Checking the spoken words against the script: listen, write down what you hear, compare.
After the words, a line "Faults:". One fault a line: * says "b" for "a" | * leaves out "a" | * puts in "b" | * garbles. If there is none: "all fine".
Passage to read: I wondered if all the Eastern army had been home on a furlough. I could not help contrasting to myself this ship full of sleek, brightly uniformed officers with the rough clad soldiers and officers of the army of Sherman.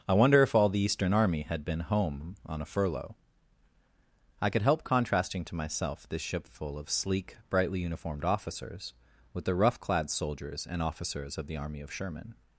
I wonder if all the Eastern army had been home on a furlough. I could help contrasting to myself this ship full of sleek, brightly uniformed officers with the rough clad soldiers and officers of the army of Sherman.
Faults:
* says "wonder" for "wondered"
* leaves out "not"